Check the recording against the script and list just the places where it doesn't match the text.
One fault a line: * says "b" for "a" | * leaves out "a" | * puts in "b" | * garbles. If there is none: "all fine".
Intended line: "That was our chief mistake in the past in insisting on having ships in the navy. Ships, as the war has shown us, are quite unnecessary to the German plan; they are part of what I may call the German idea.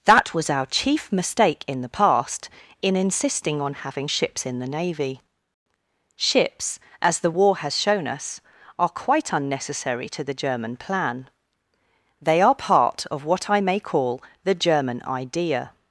all fine